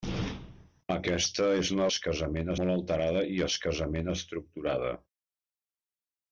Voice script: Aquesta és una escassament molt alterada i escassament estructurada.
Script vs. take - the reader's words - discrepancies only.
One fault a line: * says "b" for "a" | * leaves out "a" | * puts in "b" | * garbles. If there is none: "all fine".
all fine